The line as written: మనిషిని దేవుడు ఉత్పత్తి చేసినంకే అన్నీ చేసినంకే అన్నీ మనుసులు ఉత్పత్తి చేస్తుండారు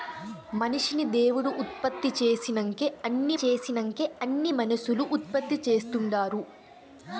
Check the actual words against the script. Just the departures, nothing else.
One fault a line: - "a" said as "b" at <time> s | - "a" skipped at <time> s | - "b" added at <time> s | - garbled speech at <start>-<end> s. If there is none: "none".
none